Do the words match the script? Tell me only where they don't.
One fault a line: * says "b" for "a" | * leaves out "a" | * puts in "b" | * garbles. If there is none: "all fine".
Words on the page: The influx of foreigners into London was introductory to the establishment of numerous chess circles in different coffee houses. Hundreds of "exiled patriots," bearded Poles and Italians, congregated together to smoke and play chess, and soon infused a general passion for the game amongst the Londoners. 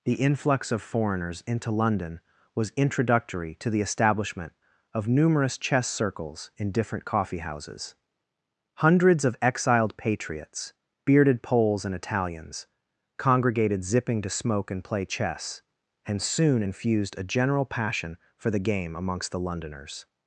* says "zipping" for "together"